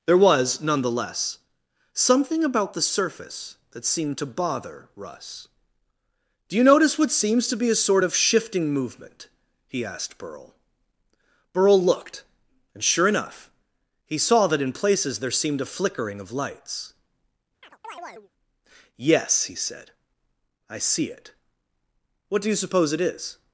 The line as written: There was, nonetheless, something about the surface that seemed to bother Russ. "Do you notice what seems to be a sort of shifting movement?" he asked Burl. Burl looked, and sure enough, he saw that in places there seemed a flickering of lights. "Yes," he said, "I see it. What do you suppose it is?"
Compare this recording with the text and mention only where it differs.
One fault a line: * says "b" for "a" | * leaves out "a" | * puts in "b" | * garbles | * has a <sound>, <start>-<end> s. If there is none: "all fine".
* has a chirp, 17.6-18.3 s